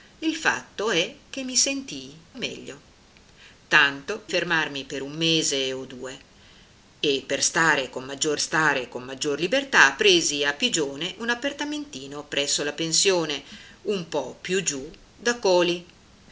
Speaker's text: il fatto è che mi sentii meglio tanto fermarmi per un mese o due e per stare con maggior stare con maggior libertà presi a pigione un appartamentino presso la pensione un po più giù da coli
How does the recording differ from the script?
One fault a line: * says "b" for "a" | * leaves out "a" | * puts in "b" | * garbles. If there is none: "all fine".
all fine